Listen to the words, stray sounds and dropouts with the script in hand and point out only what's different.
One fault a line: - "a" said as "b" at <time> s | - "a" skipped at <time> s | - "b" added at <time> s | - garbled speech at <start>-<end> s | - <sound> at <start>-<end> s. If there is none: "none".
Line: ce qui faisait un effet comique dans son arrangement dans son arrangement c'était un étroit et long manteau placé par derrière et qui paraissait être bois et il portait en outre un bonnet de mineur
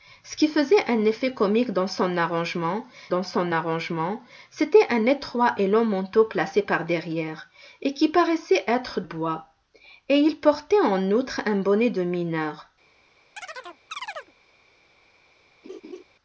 - chirp at 13.4-14.3 s
- laugh at 15.6-16.0 s